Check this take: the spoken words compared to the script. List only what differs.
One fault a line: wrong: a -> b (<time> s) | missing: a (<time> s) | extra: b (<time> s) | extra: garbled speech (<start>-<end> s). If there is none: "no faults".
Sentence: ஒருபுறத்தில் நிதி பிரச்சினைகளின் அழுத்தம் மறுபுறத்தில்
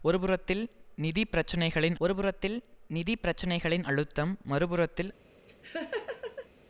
extra: ஒருபுறத்தில் நிதி பிரச்சினைகளின் (2.0 s)